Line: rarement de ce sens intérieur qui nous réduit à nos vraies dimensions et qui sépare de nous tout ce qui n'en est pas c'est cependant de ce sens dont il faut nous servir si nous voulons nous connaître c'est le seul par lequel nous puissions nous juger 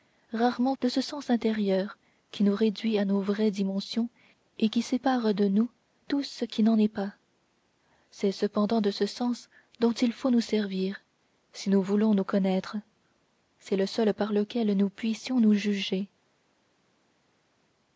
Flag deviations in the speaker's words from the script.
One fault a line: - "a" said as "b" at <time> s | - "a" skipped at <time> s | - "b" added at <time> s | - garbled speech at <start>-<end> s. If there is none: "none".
none